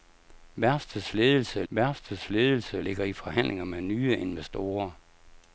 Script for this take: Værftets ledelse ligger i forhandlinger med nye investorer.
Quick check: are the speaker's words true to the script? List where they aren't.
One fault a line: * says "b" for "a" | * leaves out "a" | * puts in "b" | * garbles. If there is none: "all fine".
* puts in "værftets ledelse"